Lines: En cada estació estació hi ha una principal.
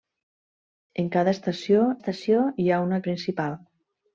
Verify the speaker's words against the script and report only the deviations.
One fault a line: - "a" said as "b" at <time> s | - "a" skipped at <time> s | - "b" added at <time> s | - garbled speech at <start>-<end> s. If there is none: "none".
none